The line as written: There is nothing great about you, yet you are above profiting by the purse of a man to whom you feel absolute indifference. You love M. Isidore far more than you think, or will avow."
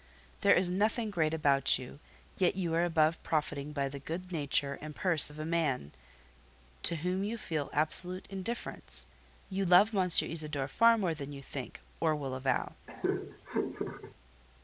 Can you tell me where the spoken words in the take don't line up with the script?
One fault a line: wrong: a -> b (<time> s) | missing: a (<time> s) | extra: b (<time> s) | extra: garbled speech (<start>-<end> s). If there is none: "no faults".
extra: good nature and (4.0 s)